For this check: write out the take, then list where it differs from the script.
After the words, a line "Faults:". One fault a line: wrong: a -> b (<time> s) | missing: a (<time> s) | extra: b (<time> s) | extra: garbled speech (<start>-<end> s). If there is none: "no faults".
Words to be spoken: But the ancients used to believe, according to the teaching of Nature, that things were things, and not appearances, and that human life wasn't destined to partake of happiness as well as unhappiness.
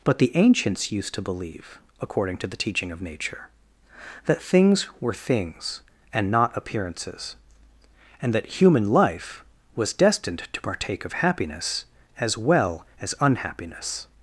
But the ancients used to believe, according to the teaching of Nature, that things were things, and not appearances, and that human life was destined to partake of happiness as well as unhappiness.
Faults:
wrong: wasn't -> was (9.7 s)